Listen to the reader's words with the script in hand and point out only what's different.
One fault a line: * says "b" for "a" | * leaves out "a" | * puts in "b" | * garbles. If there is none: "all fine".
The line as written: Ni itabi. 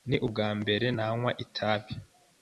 * puts in "ubwambere nanywa"